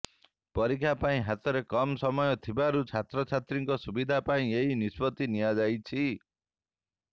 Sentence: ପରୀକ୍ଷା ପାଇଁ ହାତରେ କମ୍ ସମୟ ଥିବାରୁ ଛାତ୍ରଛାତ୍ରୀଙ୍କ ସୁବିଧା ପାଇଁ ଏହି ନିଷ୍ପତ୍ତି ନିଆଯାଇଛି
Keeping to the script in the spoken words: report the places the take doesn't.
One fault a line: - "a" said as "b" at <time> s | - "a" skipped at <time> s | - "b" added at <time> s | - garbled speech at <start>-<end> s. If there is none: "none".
none